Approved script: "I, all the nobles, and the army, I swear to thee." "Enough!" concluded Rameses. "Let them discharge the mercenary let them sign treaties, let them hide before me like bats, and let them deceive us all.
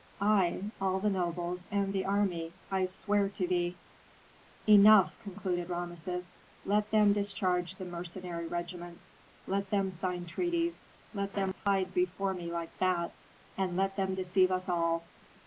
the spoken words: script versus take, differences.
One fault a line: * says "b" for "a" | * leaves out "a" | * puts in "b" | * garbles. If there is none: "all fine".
* puts in "regiments"